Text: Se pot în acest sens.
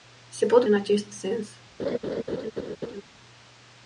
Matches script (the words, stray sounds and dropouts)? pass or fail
fail